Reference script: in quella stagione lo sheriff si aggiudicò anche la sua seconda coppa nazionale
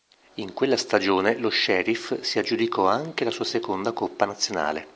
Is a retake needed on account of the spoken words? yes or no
no